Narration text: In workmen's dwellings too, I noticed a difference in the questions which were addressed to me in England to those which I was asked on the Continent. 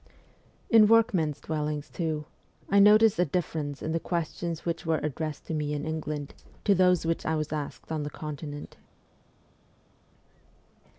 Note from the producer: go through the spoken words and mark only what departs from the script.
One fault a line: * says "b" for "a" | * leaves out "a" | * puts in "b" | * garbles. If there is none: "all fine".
all fine